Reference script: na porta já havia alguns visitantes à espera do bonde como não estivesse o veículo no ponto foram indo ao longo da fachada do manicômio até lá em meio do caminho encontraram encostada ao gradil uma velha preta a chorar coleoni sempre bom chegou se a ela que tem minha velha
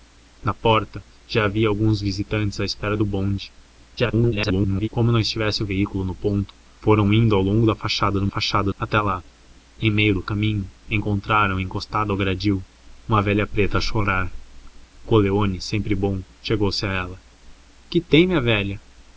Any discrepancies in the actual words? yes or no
yes